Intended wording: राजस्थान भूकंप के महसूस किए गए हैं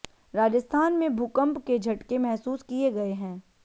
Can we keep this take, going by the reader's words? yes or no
no